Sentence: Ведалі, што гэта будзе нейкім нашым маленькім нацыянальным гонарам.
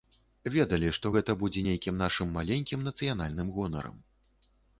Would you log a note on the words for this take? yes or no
no